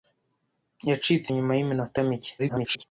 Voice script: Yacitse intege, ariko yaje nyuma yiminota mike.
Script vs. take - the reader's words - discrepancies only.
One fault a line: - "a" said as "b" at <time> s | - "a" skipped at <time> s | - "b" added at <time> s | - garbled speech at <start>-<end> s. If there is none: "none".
- "intege ariko yaje" skipped at 1.3 s
- garbled speech at 2.4-2.8 s